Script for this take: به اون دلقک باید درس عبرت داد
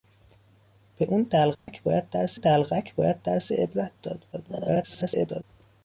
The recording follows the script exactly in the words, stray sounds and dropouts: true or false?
false